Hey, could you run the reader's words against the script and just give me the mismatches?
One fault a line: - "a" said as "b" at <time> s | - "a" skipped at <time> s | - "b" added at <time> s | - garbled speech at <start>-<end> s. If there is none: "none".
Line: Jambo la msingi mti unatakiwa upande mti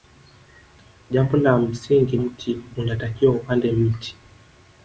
none